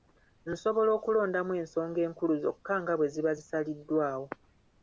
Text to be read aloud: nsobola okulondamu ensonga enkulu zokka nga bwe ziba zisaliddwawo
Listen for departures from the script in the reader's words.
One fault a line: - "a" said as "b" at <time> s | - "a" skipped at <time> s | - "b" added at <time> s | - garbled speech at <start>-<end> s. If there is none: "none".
none